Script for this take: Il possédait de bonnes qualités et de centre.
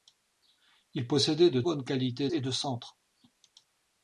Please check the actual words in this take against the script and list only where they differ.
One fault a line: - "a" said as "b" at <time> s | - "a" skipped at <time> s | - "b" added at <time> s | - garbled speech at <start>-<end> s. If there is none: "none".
none